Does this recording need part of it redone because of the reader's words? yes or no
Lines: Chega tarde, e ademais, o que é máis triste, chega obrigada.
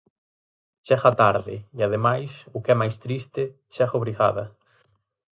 no